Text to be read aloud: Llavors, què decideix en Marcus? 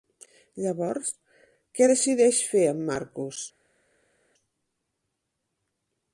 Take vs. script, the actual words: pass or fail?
fail